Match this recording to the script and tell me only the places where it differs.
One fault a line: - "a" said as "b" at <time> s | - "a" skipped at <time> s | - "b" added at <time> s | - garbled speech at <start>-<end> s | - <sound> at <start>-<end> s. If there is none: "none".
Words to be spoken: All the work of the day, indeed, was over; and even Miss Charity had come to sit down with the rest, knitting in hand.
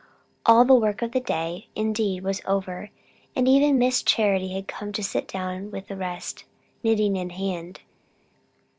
none